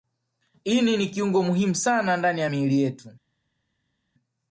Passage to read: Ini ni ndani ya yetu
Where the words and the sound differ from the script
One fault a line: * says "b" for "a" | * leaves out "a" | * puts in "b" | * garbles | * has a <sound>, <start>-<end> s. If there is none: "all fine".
* puts in "kiungo muhimu sana"
* puts in "miili"